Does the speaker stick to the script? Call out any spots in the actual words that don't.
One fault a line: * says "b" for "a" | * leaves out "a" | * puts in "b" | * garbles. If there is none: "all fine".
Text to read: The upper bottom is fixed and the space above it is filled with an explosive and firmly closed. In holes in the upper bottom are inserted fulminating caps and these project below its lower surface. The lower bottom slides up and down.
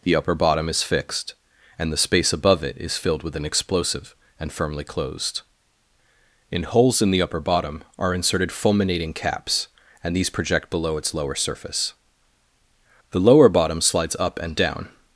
all fine